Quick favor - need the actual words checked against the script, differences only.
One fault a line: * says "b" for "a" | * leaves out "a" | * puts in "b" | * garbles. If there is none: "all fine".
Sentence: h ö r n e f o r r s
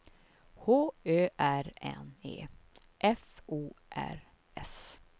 * leaves out "r"